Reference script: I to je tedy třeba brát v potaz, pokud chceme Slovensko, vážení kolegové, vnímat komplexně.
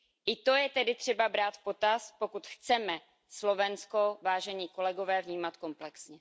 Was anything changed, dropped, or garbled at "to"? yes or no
no